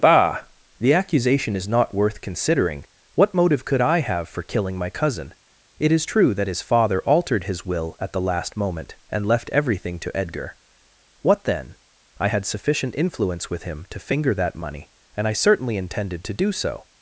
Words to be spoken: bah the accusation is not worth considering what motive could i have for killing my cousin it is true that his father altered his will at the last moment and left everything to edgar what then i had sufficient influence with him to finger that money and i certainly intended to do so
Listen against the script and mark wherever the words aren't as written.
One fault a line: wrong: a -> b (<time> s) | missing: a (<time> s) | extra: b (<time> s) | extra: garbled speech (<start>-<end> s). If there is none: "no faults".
no faults